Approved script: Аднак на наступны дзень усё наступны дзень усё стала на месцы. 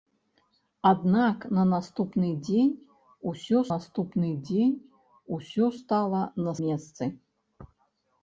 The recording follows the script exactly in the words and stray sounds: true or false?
true